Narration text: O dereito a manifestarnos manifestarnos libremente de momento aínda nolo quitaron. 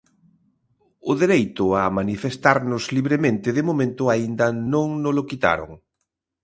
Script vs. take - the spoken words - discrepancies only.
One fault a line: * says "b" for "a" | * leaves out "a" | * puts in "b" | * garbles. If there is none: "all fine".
* leaves out "manifestarnos"
* puts in "non"